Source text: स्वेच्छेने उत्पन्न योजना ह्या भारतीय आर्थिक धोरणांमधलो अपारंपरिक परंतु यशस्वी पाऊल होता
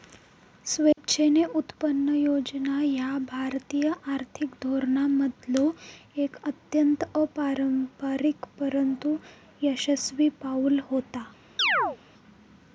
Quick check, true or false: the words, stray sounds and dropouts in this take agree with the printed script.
false